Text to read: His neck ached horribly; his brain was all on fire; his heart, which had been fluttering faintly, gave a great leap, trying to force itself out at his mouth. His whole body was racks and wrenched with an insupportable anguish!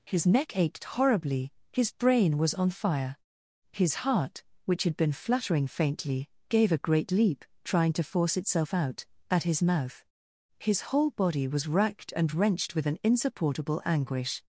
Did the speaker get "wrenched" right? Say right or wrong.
right